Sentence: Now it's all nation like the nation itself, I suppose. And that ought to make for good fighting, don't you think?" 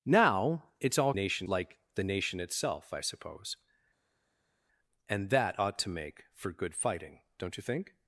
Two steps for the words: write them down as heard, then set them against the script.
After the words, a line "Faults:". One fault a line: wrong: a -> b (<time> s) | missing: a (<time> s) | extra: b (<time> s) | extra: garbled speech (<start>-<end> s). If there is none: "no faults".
Now it's all nation like the nation itself, I suppose. And that ought to make for good fighting, don't you think?"
Faults:
no faults